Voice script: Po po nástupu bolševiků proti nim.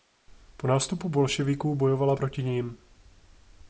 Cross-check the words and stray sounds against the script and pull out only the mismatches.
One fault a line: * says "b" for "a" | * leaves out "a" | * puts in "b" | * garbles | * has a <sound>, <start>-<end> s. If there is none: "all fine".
* leaves out "po"
* puts in "bojovala"